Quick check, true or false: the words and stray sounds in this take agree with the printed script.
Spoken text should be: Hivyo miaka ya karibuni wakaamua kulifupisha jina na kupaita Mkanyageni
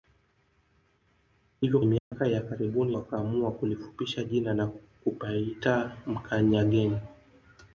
false